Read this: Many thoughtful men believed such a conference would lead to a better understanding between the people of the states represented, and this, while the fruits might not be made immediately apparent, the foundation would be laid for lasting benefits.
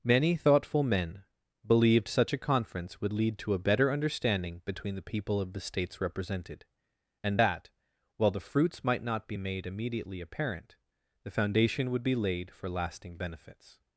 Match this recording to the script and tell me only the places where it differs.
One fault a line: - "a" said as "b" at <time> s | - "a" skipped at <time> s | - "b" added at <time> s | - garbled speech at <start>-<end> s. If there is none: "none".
- "this" said as "that" at 7.4 s